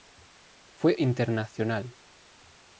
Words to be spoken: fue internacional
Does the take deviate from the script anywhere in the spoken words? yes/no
no